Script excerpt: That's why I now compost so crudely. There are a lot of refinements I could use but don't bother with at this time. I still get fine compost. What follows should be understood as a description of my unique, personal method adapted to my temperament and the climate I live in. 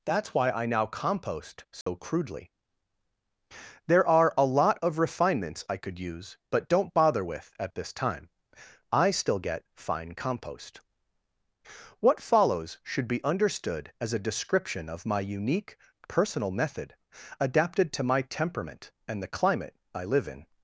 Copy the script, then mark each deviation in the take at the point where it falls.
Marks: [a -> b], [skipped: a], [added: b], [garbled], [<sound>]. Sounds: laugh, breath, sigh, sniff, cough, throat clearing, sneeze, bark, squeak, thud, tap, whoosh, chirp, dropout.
That's why I now compost so [dropout] crudely. There are a lot of refinements I could use but don't bother with at this time. I still get fine compost. What follows should be understood as a description of my unique, personal method adapted to my temperament and the climate I live in.